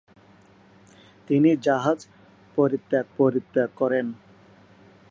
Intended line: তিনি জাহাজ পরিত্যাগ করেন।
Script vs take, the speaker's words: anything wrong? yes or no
yes